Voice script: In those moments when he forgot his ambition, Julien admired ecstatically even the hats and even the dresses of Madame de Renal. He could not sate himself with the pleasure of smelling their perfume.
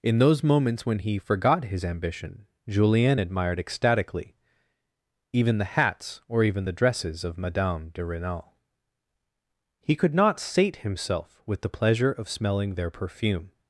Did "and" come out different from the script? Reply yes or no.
yes